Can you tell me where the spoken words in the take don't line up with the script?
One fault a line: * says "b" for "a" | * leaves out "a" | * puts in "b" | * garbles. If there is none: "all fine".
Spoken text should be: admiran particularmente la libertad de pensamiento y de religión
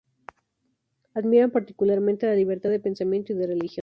all fine